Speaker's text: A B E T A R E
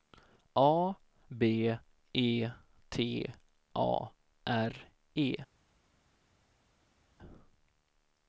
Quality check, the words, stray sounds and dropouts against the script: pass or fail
pass